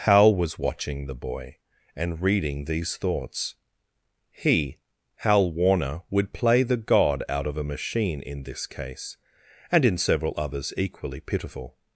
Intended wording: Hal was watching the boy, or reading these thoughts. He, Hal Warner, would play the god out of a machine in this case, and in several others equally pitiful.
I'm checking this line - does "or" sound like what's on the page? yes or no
no